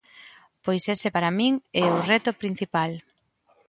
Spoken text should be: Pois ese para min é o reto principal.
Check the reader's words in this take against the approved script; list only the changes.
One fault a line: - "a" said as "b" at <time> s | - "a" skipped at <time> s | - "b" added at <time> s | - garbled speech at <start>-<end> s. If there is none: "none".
none